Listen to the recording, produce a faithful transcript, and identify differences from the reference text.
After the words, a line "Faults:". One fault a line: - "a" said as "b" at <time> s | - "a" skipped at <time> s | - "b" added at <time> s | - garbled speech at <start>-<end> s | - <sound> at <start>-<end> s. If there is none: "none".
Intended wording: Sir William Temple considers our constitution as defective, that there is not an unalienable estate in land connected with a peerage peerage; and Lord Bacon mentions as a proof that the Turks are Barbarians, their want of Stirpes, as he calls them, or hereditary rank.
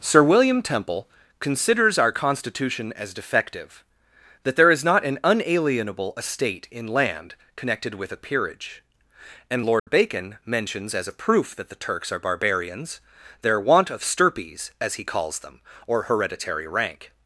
Sir William Temple considers our constitution as defective, that there is not an unalienable estate in land connected with a peerage; and Lord Bacon mentions as a proof that the Turks are Barbarians, their want of Stirpes, as he calls them, or hereditary rank.
Faults:
- "peerage" skipped at 8.8 s
- dropout at 9.8-9.9 s